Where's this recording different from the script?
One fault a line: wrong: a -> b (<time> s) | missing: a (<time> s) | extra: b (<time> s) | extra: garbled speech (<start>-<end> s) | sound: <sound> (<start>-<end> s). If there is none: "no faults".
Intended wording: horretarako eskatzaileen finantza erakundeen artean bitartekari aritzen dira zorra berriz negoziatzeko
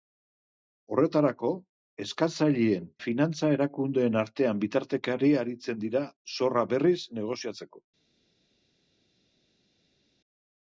no faults